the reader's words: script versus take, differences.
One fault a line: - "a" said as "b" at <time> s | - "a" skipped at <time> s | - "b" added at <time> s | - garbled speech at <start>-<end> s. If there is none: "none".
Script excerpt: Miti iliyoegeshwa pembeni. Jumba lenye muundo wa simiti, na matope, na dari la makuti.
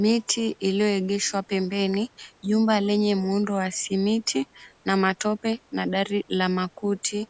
none